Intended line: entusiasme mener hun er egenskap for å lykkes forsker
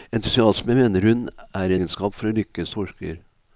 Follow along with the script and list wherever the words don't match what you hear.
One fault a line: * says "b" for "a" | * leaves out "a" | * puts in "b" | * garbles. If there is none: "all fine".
all fine